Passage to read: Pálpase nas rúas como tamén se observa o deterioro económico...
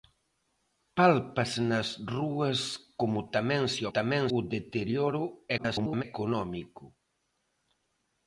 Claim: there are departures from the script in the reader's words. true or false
true